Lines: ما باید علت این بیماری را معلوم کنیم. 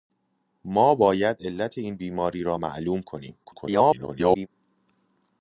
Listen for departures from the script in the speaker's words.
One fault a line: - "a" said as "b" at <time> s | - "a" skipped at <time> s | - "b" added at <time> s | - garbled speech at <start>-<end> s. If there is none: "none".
- garbled speech at 3.4-4.5 s